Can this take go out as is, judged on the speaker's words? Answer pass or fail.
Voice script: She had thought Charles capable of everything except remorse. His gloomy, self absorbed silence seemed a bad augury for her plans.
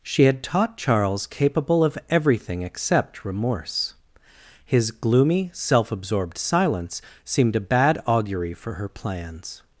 fail